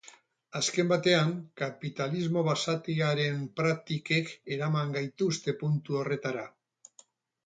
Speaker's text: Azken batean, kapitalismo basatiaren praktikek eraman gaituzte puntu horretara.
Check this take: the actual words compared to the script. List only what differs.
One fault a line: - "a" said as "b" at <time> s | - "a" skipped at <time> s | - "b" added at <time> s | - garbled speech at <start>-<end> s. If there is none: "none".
none